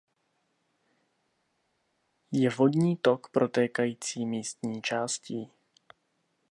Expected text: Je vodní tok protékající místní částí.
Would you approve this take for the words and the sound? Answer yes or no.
yes